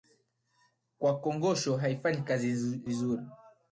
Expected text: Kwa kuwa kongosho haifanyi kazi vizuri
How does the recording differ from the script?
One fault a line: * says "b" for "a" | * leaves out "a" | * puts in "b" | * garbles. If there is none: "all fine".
* leaves out "kuwa"
* leaves out "kazi"